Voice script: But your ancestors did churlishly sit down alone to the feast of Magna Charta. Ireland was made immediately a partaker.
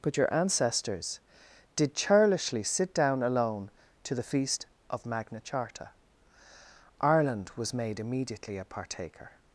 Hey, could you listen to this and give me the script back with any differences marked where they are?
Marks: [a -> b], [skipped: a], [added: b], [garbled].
But your ancestors did churlishly sit down alone to the feast of Magna Charta. Ireland was made immediately a partaker.